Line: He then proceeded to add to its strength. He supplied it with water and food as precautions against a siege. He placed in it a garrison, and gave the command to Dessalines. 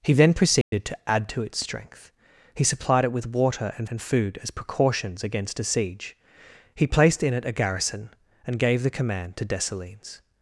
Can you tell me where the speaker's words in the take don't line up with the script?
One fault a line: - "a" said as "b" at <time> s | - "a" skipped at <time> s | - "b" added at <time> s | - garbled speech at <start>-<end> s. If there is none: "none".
- "and" added at 3.9 s